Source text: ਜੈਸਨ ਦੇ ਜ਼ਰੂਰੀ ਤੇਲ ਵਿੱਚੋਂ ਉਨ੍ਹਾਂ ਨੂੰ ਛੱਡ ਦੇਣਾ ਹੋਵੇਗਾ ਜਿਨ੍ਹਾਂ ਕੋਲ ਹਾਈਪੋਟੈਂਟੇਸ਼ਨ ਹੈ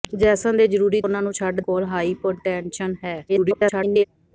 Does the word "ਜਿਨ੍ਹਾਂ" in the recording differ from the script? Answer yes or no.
yes